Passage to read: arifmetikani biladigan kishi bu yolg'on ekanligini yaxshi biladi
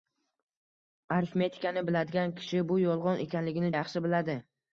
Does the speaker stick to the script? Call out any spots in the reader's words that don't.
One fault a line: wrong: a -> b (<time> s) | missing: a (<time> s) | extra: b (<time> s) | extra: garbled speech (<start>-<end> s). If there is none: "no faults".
no faults